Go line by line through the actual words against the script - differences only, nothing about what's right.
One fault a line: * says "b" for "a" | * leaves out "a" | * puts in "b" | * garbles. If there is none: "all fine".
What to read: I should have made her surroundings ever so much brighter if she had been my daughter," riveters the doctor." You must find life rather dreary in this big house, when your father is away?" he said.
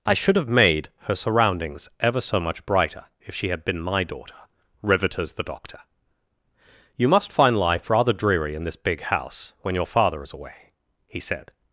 all fine